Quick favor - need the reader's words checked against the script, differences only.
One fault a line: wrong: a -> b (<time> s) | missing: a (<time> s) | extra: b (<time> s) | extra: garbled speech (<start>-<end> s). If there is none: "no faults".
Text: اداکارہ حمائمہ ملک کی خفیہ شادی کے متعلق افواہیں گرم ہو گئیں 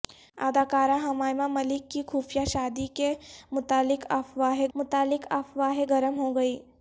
extra: متعلق افواہیں (4.7 s)